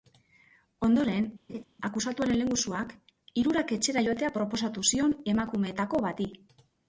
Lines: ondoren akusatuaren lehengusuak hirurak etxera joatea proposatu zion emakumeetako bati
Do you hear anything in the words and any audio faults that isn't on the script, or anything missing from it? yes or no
yes